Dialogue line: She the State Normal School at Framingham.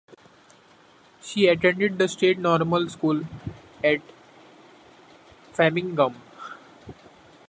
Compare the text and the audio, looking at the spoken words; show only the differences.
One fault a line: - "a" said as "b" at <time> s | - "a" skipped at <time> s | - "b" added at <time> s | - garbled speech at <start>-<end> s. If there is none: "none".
- "attended" added at 1.5 s